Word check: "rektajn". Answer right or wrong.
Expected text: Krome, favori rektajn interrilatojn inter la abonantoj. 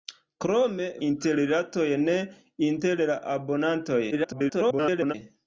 wrong